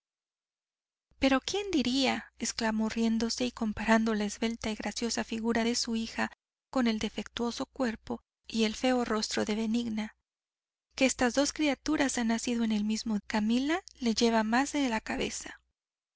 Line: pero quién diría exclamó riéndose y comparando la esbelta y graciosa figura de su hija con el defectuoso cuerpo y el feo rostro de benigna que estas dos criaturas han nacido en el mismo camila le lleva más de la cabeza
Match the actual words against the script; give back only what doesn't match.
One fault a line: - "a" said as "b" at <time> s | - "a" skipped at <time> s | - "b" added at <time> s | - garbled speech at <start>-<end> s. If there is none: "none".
none